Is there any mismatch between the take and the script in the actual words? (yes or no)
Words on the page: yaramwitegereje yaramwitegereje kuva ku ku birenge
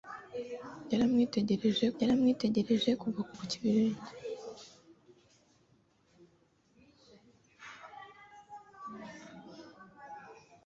no